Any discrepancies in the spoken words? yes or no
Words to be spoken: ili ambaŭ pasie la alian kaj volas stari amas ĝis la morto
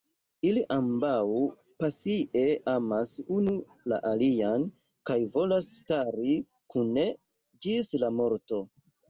yes